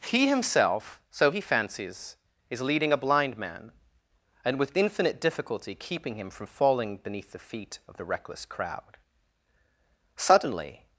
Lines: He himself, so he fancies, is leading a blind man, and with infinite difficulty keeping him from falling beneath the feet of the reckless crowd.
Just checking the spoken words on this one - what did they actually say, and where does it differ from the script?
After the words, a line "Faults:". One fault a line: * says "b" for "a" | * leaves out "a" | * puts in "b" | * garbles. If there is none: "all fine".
He himself, so he fancies, is leading a blind man, and with infinite difficulty keeping him from falling beneath the feet of the reckless crowd. Suddenly
Faults:
* puts in "Suddenly"